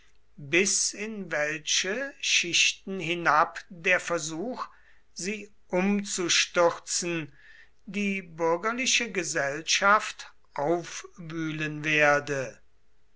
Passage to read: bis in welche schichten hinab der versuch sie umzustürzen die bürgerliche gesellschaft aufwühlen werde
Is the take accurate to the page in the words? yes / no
yes